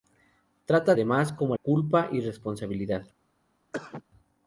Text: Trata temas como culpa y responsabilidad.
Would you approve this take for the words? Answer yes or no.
yes